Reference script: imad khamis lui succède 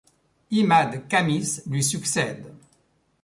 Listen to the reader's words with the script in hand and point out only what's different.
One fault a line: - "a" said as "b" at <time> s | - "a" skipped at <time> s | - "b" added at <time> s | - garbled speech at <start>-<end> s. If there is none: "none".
none